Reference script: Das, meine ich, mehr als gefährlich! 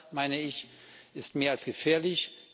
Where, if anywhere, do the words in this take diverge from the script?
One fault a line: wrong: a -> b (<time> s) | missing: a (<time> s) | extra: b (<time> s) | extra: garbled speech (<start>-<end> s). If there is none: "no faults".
extra: ist (1.1 s)